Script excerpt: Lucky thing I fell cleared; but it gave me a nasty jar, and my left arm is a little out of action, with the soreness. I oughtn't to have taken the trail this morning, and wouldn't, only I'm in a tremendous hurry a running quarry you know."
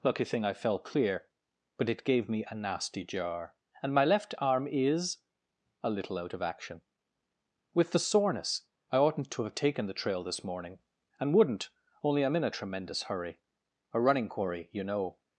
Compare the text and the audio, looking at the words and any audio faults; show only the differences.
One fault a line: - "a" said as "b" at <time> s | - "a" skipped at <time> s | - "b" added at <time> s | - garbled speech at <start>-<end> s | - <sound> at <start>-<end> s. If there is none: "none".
- "cleared" said as "clear" at 0.8 s